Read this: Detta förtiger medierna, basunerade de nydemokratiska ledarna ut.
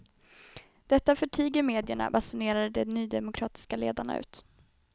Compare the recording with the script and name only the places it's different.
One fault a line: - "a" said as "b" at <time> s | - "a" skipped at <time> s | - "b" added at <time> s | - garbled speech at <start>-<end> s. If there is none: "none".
none